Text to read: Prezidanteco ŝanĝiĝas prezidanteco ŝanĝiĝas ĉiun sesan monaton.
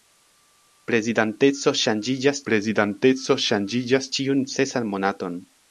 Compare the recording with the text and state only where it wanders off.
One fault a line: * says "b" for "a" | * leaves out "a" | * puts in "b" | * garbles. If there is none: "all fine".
all fine